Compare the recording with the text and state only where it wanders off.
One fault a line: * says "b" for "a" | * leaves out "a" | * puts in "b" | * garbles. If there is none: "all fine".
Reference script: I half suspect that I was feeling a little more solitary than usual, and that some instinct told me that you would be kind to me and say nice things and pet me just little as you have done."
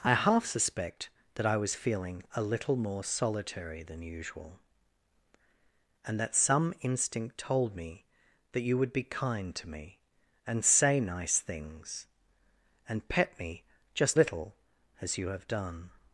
all fine